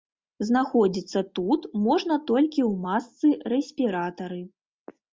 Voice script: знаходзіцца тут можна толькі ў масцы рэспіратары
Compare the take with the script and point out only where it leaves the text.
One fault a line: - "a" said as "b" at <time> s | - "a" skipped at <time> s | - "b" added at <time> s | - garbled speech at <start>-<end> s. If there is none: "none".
none